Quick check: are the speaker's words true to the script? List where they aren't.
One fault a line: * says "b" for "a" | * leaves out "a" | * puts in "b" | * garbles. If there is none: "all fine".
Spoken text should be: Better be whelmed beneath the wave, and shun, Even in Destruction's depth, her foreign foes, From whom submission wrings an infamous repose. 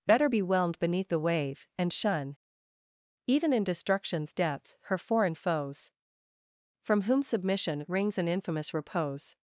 all fine